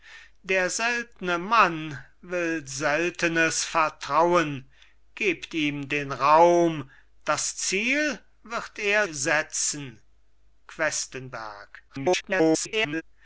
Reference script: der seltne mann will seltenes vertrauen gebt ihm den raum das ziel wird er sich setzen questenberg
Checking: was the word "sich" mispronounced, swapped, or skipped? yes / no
yes